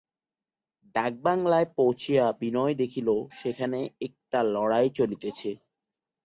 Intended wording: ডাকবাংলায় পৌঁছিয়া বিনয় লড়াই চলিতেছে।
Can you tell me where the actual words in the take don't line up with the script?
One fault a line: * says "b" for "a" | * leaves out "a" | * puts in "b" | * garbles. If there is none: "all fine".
* puts in "দেখিল সেখানে একটা"